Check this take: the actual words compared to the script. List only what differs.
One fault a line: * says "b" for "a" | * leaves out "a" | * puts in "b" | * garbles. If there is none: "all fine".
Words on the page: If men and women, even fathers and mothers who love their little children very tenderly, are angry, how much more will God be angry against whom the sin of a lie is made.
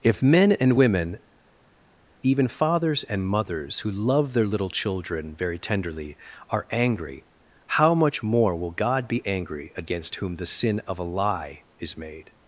all fine